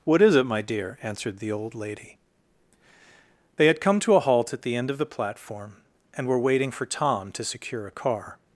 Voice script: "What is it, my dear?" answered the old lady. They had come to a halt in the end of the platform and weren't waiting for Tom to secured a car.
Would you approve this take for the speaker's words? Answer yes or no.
no